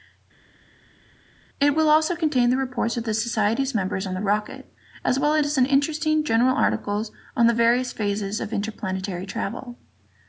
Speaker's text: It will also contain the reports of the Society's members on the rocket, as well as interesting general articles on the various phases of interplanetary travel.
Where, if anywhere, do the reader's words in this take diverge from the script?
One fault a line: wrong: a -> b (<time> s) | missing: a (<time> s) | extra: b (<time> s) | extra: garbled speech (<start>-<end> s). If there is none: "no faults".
no faults